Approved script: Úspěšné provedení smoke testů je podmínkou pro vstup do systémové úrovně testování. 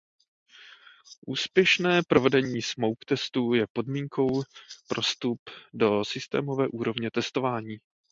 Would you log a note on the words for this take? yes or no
no